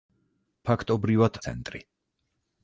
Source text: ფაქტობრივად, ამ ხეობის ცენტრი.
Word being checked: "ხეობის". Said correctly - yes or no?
no